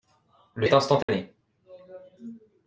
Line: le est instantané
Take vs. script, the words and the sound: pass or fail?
fail